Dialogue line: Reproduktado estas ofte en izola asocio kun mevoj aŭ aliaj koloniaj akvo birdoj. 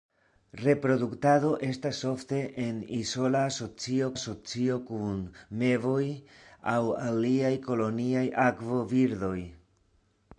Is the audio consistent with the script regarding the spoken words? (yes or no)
no